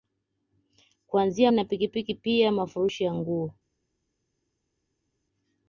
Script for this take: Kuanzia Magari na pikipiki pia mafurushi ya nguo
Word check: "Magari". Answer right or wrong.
wrong